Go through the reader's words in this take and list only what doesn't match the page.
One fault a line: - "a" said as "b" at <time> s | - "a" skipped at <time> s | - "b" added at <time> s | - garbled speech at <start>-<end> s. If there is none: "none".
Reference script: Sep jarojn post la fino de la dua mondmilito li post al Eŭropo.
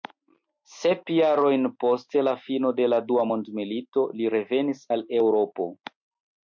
- "post" said as "revenis" at 4.4 s